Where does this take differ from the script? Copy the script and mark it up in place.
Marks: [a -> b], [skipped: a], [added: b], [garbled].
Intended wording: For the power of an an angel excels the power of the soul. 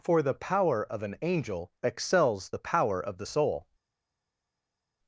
For the power of an [skipped: an] angel excels the power of the soul.